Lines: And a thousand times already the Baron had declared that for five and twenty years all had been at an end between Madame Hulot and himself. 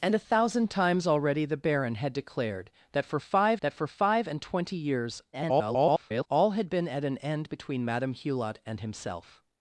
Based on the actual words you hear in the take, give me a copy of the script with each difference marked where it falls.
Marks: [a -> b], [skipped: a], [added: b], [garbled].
And a thousand times already the Baron had declared that for five [added: that for five] and twenty years [garbled] all had been at an end between Madame Hulot and himself.